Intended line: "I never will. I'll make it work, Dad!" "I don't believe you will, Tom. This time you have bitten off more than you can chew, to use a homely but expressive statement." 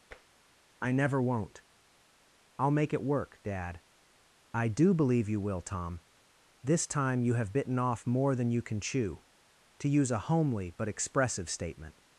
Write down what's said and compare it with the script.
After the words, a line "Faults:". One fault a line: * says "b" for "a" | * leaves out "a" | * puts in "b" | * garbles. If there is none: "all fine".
"I never won't. I'll make it work, Dad!" "I do believe you will, Tom. This time you have bitten off more than you can chew, to use a homely but expressive statement."
Faults:
* says "won't" for "will"
* says "do" for "don't"